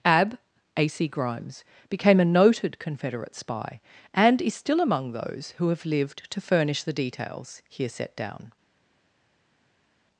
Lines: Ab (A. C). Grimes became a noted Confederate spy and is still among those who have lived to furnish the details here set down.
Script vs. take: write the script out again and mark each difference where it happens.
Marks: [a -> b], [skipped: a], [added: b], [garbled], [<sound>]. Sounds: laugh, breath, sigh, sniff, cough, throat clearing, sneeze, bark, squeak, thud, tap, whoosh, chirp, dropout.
Ab (A. C). Grimes became a noted Confederate spy and is still among those who have lived to furnish the details here set down.